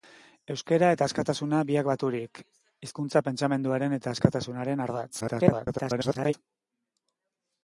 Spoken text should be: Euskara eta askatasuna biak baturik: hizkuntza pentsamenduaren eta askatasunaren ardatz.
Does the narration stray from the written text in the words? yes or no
yes